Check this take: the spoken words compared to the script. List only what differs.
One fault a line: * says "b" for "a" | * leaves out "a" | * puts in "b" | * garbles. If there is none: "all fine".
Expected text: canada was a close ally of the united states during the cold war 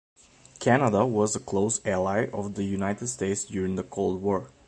all fine